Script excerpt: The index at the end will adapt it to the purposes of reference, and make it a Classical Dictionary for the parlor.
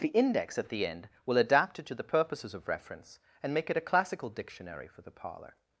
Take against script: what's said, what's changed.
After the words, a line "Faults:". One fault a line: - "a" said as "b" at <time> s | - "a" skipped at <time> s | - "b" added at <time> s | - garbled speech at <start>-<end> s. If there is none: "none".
The index at the end will adapt it to the purposes of reference, and make it a Classical Dictionary for the parlor.
Faults:
none